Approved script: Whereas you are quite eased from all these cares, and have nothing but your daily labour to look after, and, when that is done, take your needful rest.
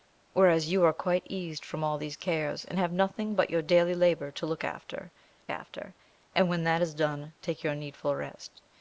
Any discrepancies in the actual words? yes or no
yes